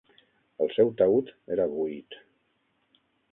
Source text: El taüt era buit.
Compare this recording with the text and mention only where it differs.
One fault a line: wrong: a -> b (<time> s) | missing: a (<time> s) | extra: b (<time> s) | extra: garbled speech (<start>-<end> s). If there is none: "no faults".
extra: seu (0.8 s)